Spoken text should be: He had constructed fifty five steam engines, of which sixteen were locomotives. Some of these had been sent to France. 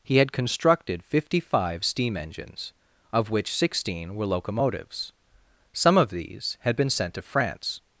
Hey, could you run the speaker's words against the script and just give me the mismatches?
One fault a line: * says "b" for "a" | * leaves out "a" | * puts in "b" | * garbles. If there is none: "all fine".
all fine